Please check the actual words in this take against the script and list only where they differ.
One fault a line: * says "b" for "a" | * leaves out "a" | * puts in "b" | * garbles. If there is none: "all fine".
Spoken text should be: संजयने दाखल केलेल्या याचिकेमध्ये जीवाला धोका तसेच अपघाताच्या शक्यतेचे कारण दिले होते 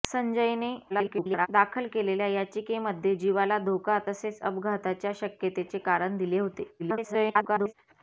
* garbles
* garbles